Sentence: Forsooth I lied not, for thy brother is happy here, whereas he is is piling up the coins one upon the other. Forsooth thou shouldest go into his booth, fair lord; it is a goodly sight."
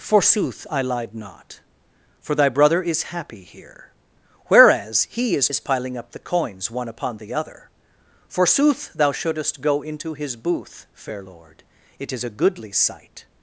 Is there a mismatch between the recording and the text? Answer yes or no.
no